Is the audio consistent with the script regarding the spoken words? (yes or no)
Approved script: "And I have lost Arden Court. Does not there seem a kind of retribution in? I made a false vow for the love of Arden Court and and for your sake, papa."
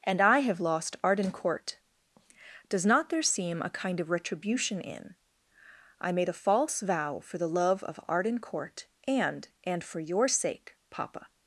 yes